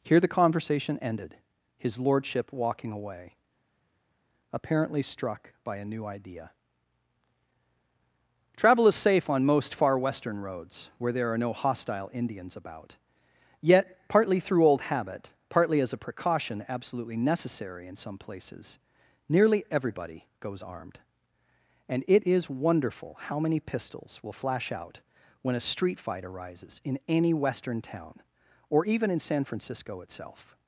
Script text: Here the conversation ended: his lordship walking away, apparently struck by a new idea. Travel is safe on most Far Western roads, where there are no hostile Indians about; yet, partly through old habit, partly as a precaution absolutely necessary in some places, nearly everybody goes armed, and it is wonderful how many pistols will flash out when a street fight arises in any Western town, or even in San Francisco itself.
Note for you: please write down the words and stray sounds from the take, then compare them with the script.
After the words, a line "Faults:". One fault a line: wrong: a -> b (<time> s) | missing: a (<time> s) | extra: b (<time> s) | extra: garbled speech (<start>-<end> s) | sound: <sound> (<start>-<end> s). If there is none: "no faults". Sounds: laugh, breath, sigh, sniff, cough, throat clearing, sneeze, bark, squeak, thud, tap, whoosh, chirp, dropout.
Here the conversation ended: his lordship walking away, apparently struck by a new idea. Travel is safe on most Far Western roads, where there are no hostile Indians about; yet, partly through old habit, partly as a precaution absolutely necessary in some places, nearly everybody goes armed, and it is wonderful how many pistols will flash out when a street fight arises in any Western town, or even in San Francisco itself.
Faults:
no faults